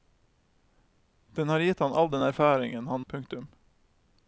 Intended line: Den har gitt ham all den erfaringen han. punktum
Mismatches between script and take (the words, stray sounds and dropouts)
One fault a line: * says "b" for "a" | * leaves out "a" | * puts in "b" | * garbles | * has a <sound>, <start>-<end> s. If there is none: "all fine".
all fine